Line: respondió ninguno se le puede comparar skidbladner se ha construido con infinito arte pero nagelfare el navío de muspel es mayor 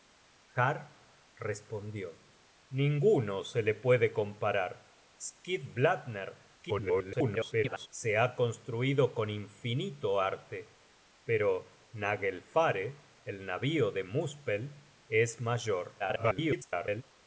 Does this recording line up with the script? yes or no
no